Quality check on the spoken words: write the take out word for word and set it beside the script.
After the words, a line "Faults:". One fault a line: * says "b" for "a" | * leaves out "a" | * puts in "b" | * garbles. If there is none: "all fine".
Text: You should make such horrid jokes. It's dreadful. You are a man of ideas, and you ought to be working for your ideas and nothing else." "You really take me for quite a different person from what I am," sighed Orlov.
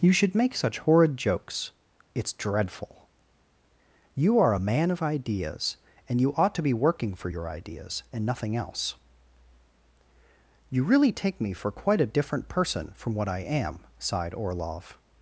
You should make such horrid jokes. It's dreadful. You are a man of ideas, and you ought to be working for your ideas and nothing else." "You really take me for quite a different person from what I am," sighed Orlov.
Faults:
all fine